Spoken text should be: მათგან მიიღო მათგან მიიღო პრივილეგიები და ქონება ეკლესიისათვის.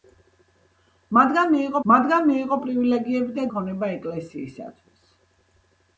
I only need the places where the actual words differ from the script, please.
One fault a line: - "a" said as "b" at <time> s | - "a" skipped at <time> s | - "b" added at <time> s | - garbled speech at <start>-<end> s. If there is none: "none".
none